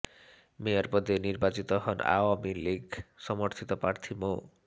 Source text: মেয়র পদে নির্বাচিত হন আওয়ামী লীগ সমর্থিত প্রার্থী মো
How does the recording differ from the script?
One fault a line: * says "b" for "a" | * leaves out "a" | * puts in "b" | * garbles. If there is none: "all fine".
all fine